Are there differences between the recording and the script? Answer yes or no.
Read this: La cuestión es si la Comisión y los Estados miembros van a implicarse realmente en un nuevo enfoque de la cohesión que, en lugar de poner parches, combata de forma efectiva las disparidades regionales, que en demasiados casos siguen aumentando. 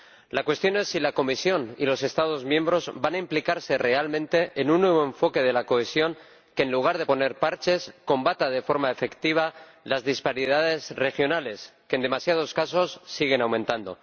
no